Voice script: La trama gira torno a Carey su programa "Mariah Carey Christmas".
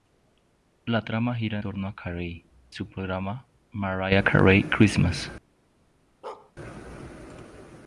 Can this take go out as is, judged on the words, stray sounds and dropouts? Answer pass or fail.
fail